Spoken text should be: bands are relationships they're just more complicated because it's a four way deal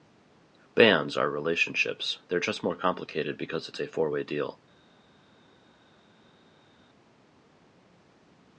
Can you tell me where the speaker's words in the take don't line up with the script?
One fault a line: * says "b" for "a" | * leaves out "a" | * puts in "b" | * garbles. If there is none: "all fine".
all fine